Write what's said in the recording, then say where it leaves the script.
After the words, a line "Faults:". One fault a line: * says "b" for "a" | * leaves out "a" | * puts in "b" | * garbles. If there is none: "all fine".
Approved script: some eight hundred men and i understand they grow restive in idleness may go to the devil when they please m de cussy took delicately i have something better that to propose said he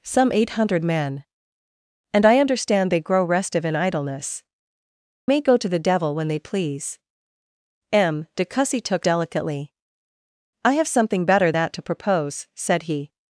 some eight hundred men and i understand they grow restive in idleness may go to the devil when they please m de cussy took delicately i have something better that to propose said he
Faults:
all fine